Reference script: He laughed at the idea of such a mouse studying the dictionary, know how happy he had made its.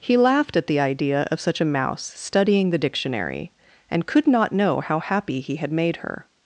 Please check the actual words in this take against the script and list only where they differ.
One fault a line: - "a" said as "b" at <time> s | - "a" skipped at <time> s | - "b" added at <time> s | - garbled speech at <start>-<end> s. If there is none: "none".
- "and could not" added at 3.9 s
- "its" said as "her" at 6.0 s